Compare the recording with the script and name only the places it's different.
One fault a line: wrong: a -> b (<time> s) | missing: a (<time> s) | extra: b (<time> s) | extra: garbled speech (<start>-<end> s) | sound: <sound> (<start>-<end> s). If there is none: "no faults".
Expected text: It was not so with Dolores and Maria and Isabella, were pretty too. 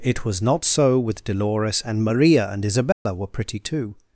sound: dropout (2.9-3.1 s)